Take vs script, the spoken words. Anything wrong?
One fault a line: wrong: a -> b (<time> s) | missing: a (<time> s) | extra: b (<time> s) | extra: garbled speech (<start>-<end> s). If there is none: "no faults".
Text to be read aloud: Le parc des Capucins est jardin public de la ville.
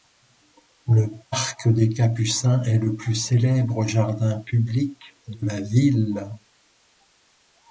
extra: le plus célèbre (2.8 s)